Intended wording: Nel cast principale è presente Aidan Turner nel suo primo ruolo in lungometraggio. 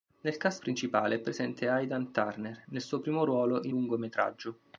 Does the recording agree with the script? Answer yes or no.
yes